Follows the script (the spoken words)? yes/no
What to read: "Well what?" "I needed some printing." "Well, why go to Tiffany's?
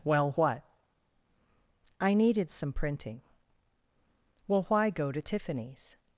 yes